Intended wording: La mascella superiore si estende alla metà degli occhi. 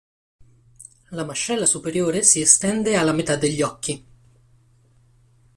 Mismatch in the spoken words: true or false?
false